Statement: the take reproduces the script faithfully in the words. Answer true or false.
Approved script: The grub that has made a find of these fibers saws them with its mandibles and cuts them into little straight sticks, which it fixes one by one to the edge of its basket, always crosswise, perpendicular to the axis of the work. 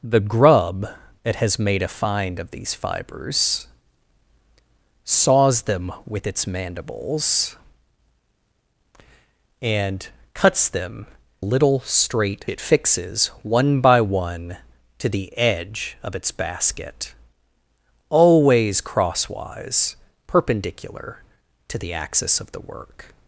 false